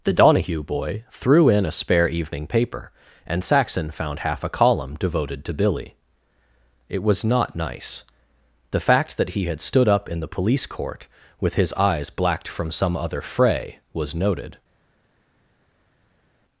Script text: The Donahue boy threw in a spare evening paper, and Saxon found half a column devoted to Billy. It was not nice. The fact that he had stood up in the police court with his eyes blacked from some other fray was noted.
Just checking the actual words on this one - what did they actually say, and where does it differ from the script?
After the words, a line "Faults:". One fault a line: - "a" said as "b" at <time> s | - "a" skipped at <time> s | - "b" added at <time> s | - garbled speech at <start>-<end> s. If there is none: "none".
The Donahue boy threw in a spare evening paper, and Saxon found half a column devoted to Billy. It was not nice. The fact that he had stood up in the police court with his eyes blacked from some other fray was noted.
Faults:
none